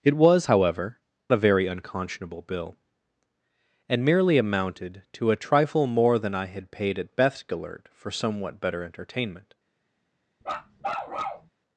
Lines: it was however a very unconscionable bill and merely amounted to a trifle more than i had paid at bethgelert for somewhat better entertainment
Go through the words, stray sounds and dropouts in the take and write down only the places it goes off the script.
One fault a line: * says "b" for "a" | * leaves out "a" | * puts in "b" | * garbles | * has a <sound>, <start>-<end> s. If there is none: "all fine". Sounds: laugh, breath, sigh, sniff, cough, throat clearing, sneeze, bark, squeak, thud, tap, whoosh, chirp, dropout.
* has a bark, 10.4-11.5 s